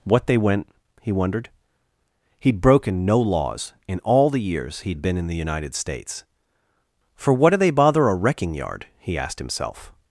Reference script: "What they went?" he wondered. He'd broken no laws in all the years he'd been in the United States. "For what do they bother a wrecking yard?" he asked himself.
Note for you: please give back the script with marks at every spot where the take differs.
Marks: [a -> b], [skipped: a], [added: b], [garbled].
"What they went?" he wondered. He'd broken no laws in all the years he'd been in the United States. "For what do they bother a wrecking yard?" he asked himself.